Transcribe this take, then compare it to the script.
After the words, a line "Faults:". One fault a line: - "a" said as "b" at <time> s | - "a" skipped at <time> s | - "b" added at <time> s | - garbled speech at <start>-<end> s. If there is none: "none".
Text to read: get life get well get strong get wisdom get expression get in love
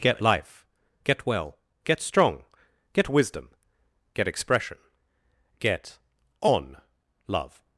get life get well get strong get wisdom get expression get on love
Faults:
- "in" said as "on" at 6.4 s